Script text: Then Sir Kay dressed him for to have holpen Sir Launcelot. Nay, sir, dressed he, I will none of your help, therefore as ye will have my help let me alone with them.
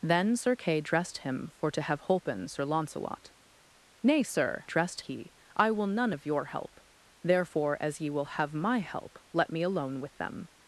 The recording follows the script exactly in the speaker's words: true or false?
true